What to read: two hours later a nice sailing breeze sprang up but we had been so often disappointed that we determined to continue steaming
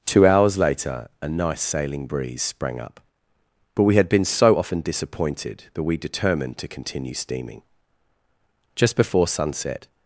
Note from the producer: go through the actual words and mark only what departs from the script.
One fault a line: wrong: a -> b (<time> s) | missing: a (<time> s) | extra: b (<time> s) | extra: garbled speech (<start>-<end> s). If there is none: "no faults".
extra: just before sunset (8.7 s)